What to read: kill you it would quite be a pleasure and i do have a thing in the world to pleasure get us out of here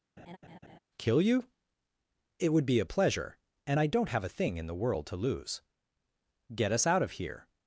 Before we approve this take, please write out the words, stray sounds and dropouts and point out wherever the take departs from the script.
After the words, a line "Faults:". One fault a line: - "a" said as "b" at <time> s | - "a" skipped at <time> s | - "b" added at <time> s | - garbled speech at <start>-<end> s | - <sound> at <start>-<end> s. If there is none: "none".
kill you it would be a pleasure and i don't have a thing in the world to lose get us out of here
Faults:
- laugh at 0.2-0.8 s
- "quite" skipped at 2.6 s
- "do" said as "don't" at 3.9 s
- "pleasure" said as "lose" at 5.2 s